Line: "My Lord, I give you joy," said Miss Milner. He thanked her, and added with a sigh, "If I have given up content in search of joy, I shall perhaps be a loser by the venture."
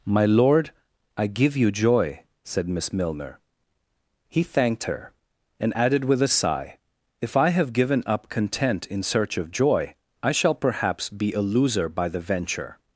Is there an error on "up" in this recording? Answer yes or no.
no